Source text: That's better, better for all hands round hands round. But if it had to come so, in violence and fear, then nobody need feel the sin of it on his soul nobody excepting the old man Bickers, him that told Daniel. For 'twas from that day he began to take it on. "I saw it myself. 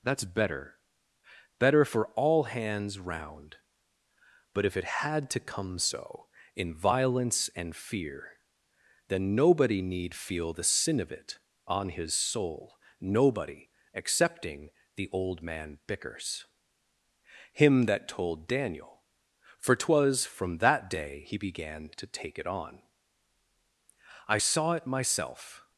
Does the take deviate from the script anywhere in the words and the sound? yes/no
yes